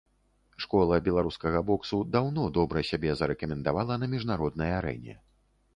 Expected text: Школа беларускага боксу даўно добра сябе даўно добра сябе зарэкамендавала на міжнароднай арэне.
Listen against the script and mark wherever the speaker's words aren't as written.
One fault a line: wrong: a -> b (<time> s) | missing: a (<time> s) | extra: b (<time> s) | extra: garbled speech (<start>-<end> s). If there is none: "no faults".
missing: даўно добра сябе (3.1 s)